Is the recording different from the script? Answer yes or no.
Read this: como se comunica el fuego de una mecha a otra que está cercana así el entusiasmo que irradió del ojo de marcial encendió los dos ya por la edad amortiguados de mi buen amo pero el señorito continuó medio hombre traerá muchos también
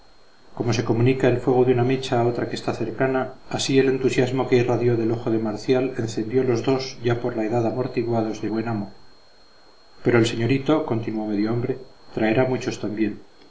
yes